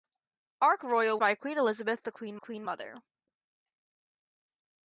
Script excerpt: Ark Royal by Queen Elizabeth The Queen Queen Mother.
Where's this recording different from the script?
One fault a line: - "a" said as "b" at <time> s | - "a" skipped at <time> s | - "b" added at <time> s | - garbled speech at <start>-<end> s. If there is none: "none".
none